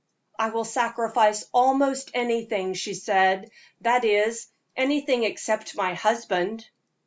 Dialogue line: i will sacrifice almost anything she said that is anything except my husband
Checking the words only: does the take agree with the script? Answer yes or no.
yes